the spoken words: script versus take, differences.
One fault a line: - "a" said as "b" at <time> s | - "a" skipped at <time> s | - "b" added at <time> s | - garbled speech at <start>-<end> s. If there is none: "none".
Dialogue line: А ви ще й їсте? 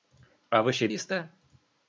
none